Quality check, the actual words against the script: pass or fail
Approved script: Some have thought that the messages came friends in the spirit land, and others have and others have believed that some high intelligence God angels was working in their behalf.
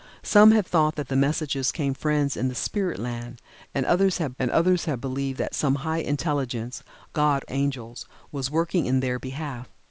pass